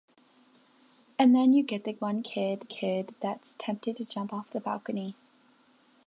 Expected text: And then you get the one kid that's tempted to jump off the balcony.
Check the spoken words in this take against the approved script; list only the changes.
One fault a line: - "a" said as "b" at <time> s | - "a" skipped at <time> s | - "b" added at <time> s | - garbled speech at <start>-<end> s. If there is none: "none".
- "kid" added at 2.7 s